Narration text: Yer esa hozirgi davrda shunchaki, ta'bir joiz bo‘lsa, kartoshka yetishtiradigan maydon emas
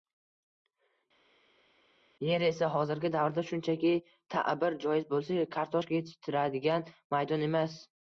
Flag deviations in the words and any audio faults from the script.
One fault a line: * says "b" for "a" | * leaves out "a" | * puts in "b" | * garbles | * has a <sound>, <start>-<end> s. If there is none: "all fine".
all fine